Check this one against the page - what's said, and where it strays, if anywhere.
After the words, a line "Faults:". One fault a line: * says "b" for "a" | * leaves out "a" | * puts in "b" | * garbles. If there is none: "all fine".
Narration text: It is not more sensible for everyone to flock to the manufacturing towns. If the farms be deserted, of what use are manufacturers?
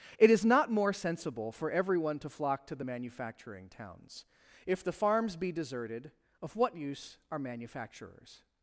It is not more sensible for everyone to flock to the manufacturing towns. If the farms be deserted, of what use are manufacturers?
Faults:
all fine